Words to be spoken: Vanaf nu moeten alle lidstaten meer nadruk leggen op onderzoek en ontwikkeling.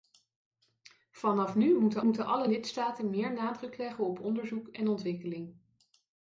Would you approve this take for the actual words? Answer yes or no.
no